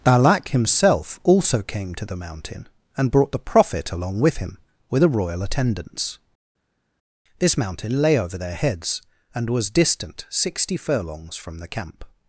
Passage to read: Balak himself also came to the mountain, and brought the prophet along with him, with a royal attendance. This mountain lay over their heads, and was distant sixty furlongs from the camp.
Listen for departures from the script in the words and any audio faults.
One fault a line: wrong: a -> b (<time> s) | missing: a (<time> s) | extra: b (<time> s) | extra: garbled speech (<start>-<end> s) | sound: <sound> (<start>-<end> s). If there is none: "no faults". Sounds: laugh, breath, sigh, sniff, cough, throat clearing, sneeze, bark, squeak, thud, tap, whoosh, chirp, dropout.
no faults